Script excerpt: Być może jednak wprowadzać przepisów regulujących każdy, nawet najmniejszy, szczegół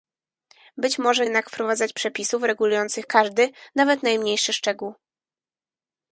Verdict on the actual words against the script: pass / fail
pass